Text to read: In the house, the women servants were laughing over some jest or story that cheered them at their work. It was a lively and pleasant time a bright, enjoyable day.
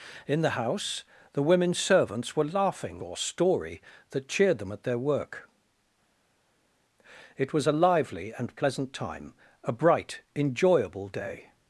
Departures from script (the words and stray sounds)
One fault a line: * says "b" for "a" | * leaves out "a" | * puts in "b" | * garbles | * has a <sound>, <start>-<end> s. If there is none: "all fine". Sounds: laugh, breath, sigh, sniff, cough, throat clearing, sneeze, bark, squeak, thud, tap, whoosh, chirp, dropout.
* leaves out "over some jest"